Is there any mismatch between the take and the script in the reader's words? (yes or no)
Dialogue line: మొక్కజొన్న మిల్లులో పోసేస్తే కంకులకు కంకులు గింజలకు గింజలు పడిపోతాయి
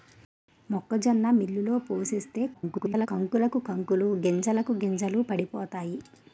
yes